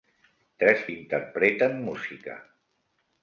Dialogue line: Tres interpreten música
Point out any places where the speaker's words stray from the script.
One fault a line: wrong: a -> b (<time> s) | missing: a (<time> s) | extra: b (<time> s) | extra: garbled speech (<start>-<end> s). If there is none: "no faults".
no faults